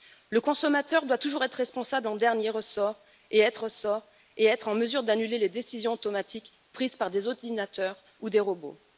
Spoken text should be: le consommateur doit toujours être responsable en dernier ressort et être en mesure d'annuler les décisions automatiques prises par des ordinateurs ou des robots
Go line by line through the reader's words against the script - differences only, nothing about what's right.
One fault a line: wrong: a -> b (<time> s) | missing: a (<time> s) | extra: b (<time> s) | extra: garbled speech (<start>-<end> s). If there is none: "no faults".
extra: ressort et être (3.6 s)